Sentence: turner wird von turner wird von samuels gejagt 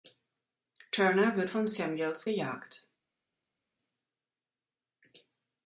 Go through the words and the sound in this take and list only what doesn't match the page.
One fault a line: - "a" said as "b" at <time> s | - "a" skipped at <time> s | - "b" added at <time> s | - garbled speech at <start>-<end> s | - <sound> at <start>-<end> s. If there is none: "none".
- "turner wird von" skipped at 1.7 s